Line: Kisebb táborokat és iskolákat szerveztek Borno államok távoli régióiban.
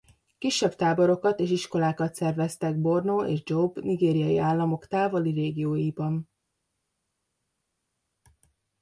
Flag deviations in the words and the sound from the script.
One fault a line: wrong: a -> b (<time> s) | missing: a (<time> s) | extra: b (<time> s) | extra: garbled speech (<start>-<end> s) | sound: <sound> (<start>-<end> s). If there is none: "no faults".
extra: és Jobe nigériai (3.2 s)